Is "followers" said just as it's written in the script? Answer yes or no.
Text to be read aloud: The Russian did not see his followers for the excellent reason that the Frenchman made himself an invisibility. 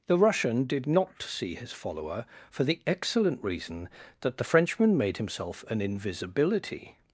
no